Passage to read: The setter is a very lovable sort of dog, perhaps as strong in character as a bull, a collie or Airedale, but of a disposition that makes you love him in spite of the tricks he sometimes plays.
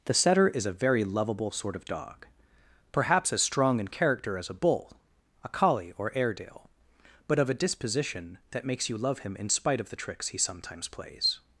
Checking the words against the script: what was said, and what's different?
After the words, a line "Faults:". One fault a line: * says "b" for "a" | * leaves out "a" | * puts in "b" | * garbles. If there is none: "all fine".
The setter is a very lovable sort of dog, perhaps as strong in character as a bull, a collie or Airedale, but of a disposition that makes you love him in spite of the tricks he sometimes plays.
Faults:
all fine